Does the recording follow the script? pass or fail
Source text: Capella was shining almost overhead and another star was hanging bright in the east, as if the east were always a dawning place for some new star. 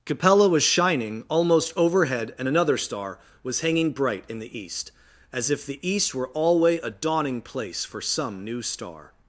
fail